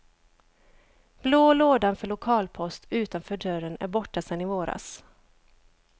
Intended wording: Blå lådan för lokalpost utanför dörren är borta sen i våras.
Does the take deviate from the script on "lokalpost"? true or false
false